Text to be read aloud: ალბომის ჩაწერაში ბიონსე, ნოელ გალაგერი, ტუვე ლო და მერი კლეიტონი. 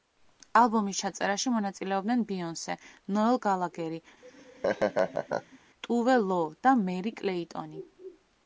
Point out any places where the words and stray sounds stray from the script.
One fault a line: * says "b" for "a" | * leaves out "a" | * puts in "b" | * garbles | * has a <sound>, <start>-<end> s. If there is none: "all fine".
* puts in "მონაწილეობდნენ"
* has a laugh, 4.2-5.6 s